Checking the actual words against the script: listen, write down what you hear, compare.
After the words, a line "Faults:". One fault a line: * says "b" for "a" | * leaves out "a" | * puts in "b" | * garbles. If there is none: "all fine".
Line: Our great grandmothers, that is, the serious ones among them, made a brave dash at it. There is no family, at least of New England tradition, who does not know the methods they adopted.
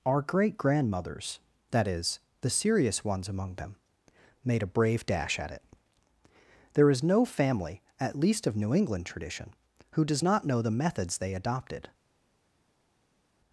Our great grandmothers, that is, the serious ones among them, made a brave dash at it. There is no family, at least of New England tradition, who does not know the methods they adopted.
Faults:
all fine